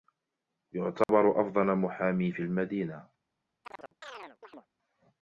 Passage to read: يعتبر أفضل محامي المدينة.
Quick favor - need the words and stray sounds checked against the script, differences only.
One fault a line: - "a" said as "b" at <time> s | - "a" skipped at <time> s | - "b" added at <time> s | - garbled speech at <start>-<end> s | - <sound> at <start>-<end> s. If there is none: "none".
- dropout at 1.0-1.1 s
- "في" added at 2.3 s
- chirp at 3.6-4.7 s